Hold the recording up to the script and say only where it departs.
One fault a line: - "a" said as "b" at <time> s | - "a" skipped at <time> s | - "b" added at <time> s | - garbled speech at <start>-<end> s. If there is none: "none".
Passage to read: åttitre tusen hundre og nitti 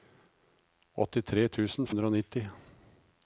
none